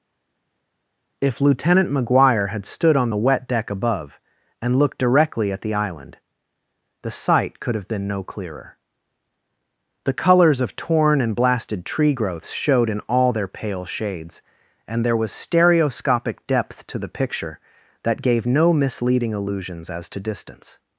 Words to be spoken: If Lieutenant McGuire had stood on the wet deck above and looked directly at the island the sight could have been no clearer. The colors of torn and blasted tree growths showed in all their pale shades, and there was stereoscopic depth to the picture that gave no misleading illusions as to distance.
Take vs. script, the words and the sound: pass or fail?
pass